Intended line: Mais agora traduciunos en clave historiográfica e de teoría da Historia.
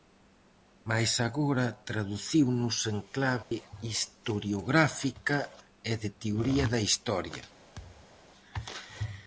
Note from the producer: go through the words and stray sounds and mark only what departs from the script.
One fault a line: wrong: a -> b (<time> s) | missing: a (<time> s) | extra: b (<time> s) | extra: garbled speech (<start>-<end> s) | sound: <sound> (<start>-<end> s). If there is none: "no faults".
sound: dropout (3.4-3.5 s)
sound: thud (7.8-8.2 s)